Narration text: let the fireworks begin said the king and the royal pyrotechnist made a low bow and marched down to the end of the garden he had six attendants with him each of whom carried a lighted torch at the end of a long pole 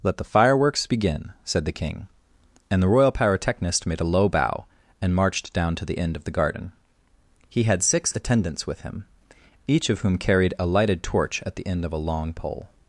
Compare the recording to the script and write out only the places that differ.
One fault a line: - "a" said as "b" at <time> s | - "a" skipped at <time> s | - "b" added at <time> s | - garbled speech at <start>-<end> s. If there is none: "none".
none